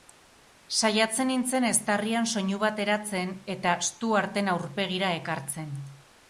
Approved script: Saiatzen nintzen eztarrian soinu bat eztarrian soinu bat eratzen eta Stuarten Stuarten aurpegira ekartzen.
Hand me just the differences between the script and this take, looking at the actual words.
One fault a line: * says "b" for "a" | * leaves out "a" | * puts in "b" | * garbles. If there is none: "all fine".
* leaves out "eztarrian soinu bat"
* leaves out "Stuarten"